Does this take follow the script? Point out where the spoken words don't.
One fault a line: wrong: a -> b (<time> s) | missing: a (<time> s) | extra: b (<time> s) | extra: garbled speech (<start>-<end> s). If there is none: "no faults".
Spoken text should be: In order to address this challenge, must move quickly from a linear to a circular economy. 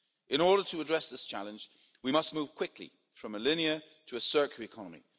extra: we (2.0 s)